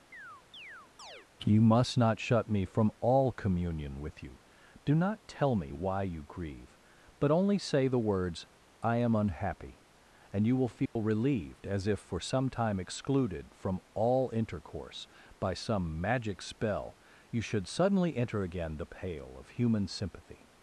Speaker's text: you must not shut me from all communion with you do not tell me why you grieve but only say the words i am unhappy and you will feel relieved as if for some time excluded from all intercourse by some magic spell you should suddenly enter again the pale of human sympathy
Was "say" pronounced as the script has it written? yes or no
yes